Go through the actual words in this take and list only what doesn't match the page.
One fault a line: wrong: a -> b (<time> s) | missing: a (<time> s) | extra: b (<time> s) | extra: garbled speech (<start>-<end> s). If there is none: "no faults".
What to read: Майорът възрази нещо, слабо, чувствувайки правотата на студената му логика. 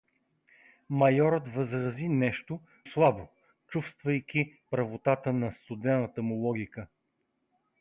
no faults